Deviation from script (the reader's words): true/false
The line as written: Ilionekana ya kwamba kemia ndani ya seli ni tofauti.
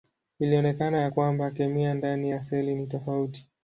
false